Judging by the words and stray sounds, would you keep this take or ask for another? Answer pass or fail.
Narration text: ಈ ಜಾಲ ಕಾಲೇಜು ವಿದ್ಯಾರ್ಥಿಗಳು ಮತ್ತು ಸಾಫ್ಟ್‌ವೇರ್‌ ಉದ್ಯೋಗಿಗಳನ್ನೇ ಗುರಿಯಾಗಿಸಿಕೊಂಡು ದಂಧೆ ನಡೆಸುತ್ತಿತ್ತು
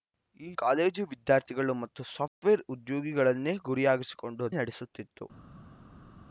fail